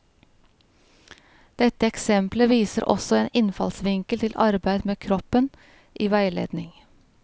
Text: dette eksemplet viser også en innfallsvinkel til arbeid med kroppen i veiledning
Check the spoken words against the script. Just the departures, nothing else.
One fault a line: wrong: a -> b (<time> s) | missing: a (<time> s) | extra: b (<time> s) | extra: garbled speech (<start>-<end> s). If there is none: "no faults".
no faults